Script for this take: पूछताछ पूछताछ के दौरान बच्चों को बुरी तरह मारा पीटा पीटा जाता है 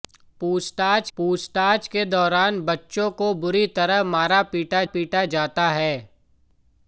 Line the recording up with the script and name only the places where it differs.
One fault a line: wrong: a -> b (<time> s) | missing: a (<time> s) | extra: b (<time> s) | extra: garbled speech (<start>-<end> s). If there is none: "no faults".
no faults